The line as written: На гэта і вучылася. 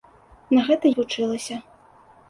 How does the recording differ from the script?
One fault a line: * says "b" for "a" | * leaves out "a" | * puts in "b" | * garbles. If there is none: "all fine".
all fine